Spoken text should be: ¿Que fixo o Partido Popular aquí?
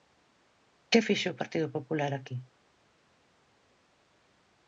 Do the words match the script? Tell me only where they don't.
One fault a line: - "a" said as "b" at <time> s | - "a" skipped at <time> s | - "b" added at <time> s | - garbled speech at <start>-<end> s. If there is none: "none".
none